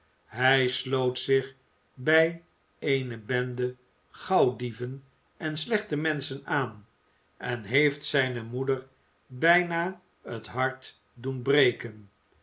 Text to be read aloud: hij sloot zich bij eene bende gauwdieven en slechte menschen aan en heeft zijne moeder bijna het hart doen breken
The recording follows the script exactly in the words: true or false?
true